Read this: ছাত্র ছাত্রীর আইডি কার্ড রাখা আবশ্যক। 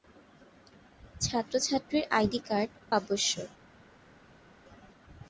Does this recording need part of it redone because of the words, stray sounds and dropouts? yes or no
yes